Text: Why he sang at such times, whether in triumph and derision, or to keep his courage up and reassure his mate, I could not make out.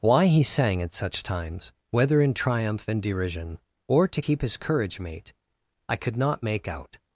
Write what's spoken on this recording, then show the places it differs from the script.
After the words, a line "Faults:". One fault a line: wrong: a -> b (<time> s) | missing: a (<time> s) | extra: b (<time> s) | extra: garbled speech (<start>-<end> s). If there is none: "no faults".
Why he sang at such times, whether in triumph and derision, or to keep his courage mate, I could not make out.
Faults:
missing: up and reassure his (5.0 s)